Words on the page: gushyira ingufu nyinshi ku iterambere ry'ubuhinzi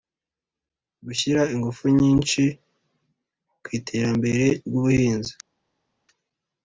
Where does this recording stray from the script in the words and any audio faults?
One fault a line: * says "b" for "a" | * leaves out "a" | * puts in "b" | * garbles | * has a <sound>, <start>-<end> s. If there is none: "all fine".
all fine